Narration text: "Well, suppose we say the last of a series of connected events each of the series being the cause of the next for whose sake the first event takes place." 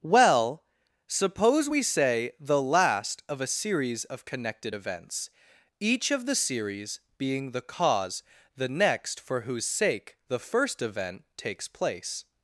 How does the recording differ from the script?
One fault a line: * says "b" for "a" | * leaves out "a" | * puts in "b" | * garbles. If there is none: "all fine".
* leaves out "of"